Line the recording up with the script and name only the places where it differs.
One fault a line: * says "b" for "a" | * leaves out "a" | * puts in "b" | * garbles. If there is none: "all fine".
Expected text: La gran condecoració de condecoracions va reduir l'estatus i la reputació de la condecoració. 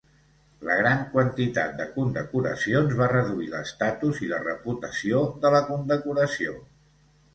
* says "quantitat" for "condecoració"